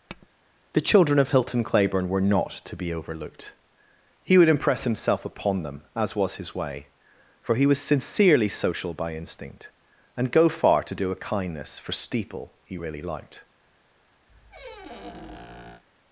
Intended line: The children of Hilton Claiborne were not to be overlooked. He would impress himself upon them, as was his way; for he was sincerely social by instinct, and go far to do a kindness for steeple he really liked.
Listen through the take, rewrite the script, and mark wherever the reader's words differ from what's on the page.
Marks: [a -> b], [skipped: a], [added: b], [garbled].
The children of Hilton Claiborne were not to be overlooked. He would impress himself upon them, as was his way; for he was sincerely social by instinct, and go far to do a kindness for steeple he really liked.